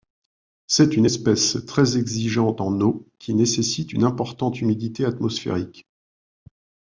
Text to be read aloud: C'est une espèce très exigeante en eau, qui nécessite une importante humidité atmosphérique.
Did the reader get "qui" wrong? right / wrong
right